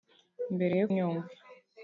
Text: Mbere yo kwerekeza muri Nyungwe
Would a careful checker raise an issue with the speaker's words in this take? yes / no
yes